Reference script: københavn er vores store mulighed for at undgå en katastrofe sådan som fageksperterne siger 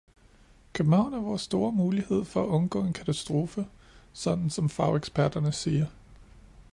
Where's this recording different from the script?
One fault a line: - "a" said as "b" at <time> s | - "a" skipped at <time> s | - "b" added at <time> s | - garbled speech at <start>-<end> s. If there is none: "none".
none